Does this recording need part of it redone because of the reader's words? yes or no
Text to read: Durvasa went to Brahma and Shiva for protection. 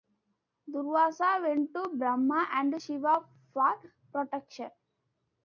no